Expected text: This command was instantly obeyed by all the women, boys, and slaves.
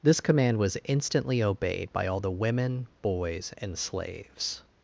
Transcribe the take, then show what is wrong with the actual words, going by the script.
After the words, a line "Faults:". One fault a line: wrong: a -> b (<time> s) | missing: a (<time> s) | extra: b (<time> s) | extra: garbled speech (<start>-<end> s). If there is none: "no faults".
This command was instantly obeyed by all the women, boys, and slaves.
Faults:
no faults